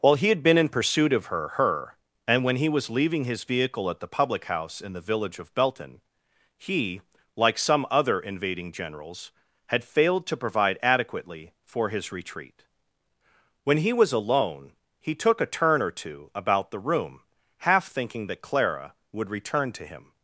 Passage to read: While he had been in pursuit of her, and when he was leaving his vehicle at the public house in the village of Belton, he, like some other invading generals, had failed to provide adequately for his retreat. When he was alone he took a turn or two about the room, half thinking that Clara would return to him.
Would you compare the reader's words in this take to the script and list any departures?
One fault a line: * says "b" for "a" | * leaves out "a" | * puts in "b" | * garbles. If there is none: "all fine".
* puts in "her"